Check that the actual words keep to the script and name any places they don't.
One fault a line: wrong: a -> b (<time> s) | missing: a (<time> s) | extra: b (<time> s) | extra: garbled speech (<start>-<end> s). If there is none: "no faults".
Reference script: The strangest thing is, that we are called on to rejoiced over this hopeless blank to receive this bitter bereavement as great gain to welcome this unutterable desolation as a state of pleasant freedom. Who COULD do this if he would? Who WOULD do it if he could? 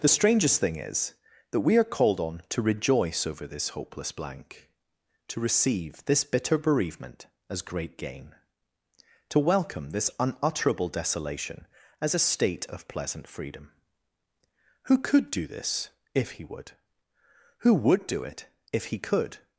wrong: rejoiced -> rejoice (2.6 s)